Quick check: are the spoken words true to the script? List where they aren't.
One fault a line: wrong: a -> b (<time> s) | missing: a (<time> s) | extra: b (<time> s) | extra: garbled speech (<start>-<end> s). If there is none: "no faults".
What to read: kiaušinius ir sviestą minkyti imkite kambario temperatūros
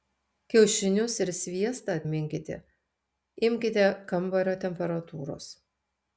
no faults